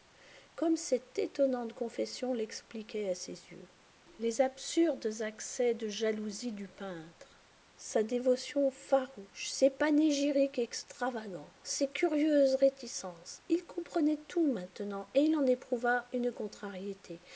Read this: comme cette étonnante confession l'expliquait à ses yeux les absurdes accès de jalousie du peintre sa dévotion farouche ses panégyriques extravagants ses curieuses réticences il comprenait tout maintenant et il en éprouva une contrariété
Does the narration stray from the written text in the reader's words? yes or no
no